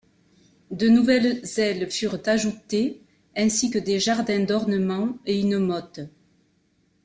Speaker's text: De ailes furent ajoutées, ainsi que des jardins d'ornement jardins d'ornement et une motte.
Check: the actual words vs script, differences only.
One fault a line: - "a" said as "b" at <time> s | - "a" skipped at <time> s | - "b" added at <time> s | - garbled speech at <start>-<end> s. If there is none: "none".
- "nouvelles" added at 0.9 s
- "jardins d'ornement" skipped at 5.2 s